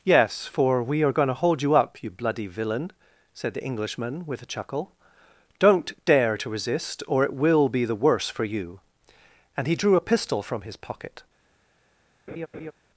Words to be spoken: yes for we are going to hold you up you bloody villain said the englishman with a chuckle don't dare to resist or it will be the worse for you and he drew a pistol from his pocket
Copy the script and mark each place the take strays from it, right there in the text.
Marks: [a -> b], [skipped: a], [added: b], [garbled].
yes for we are going to hold you up you bloody villain said the englishman with a chuckle don't dare to resist or it will be the worse for you and he drew a pistol from his pocket